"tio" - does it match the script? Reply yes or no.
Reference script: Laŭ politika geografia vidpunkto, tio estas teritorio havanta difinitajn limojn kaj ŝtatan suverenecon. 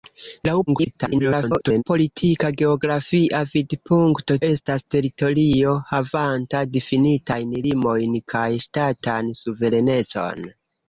no